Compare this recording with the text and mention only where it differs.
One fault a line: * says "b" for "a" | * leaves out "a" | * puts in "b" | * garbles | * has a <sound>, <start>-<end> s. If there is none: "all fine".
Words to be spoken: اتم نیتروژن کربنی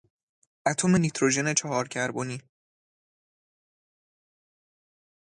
* puts in "چهار"